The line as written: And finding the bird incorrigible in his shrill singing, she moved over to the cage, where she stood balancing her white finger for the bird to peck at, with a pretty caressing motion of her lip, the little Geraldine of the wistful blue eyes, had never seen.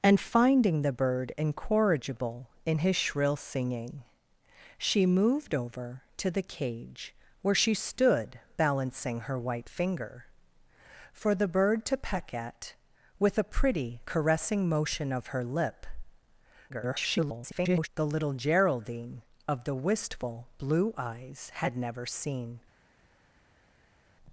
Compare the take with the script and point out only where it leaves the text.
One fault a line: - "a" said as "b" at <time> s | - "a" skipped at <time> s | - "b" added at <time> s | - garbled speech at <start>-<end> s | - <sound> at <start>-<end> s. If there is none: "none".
- garbled speech at 16.7-17.9 s